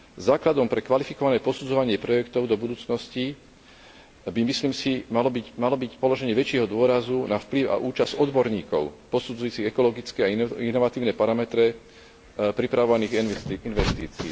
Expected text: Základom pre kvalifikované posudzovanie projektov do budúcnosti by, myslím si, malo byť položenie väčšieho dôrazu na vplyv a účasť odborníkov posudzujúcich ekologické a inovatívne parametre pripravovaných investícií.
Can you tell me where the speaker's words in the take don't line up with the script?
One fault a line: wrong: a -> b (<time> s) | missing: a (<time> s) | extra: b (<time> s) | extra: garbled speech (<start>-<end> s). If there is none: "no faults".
extra: malo byť (5.6 s)